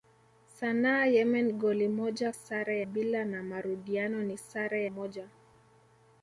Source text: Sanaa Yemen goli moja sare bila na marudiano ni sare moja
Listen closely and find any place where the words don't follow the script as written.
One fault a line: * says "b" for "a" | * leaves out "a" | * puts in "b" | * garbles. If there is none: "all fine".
all fine